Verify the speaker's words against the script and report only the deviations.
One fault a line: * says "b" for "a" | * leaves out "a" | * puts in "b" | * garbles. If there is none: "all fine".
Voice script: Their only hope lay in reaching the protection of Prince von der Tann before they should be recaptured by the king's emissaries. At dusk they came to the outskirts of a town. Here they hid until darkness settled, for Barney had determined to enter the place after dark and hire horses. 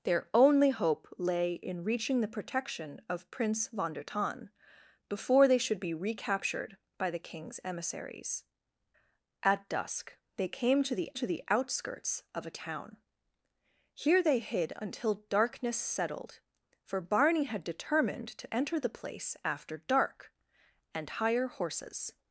* puts in "to the"